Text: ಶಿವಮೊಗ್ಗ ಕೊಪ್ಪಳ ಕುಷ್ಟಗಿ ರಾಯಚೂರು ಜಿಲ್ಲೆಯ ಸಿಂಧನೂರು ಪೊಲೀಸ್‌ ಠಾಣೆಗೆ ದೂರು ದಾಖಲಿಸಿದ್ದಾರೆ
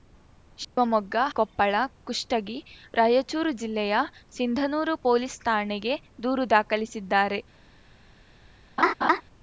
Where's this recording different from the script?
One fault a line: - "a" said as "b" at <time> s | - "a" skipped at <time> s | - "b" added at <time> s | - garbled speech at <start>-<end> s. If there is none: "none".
none